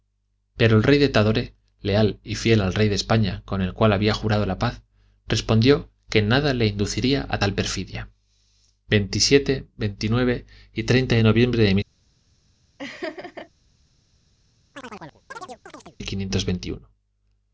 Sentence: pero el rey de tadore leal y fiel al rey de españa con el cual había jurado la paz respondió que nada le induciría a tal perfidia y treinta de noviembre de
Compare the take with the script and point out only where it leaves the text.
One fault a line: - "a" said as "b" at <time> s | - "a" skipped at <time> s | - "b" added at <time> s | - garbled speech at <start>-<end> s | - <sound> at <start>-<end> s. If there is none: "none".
- laugh at 12.8-13.5 s
- chirp at 14.7-16.0 s